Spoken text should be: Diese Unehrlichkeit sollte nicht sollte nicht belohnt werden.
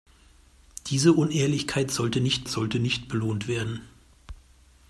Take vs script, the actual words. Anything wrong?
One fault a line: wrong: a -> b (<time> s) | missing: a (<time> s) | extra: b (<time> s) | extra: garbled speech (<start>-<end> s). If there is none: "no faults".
no faults